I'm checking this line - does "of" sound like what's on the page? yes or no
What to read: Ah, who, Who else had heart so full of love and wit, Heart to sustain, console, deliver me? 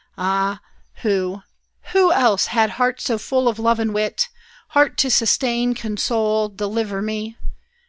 yes